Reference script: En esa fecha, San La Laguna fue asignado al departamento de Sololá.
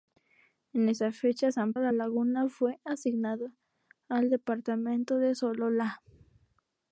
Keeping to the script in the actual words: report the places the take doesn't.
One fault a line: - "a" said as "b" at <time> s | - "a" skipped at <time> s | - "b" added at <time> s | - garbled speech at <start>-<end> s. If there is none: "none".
none